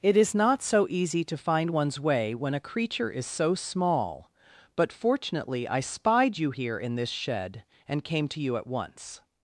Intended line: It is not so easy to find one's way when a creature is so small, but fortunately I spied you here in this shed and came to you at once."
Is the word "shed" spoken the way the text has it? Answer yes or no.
yes